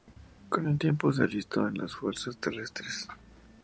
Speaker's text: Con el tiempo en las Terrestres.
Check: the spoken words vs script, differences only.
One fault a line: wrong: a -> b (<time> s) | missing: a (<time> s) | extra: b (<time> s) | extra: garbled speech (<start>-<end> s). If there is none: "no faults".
extra: se alistó (1.1 s)
extra: Fuerzas (1.9 s)